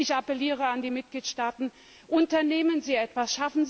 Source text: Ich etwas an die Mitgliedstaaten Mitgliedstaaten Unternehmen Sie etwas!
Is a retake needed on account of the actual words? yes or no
yes